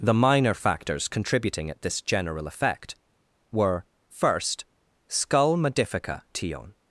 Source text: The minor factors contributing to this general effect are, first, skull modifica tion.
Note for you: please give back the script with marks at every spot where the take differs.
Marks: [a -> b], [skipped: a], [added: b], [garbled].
The minor factors contributing [to -> at] this general effect [are, -> were] first, skull modifica tion.